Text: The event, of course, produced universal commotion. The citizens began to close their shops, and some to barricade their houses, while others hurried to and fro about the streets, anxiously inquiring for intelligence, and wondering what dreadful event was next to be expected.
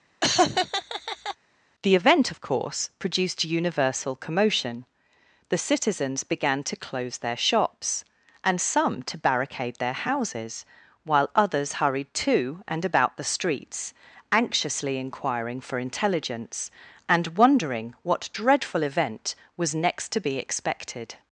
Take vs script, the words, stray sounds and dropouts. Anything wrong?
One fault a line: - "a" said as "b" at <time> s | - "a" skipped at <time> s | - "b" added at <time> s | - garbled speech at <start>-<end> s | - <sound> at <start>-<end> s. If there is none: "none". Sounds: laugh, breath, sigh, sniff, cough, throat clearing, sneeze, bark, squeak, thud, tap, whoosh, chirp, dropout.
- laugh at 0.2-1.4 s
- "fro" skipped at 12.8 s